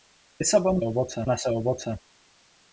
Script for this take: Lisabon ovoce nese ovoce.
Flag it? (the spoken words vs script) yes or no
no